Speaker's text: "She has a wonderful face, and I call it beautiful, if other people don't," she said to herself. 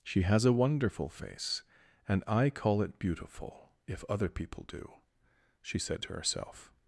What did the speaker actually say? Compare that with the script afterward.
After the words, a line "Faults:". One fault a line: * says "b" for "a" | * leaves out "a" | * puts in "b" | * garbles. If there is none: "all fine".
"She has a wonderful face, and I call it beautiful, if other people do," she said to herself.
Faults:
* says "do" for "don't"